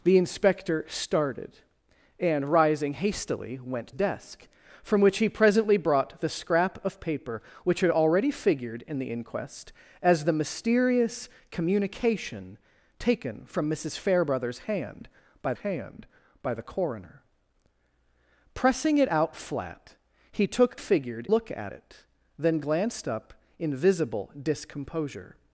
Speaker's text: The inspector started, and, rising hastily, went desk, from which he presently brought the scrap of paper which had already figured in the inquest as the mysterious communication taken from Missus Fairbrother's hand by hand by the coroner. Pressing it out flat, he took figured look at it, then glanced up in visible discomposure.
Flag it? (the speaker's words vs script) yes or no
no